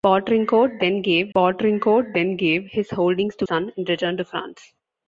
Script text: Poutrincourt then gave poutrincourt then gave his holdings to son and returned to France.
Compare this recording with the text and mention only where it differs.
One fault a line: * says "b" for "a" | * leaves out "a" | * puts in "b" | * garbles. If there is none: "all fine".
all fine